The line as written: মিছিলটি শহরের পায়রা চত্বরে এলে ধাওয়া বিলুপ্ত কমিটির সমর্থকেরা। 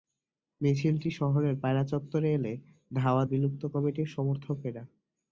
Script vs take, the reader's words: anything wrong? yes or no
no